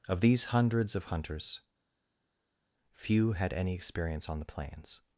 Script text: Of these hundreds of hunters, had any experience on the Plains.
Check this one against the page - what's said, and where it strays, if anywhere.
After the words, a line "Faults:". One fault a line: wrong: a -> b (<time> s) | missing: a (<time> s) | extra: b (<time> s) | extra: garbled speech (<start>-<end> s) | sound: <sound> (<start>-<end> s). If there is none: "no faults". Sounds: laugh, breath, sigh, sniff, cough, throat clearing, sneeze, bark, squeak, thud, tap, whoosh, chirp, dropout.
Of these hundreds of hunters, few had any experience on the Plains.
Faults:
extra: few (2.9 s)